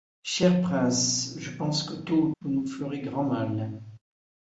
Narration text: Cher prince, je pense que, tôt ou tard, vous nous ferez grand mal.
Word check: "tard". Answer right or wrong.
wrong